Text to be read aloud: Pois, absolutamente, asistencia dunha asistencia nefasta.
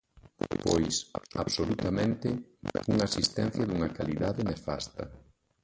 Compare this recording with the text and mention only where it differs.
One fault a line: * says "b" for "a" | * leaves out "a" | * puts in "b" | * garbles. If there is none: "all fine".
* puts in "unha"
* says "calidade" for "asistencia"